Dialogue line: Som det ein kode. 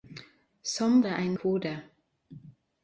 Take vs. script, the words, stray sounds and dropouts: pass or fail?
pass